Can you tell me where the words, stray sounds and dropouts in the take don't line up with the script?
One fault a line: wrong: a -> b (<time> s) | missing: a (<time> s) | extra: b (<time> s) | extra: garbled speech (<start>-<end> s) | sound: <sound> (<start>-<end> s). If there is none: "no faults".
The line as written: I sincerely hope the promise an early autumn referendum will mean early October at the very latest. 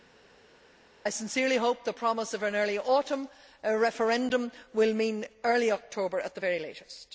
extra: of (2.3 s)